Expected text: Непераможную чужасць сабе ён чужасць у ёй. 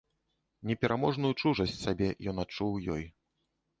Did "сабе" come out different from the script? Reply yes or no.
no